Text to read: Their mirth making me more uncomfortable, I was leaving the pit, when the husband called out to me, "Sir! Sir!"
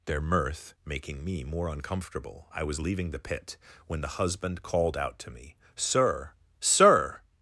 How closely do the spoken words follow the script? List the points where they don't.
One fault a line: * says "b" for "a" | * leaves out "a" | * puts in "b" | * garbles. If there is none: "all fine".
all fine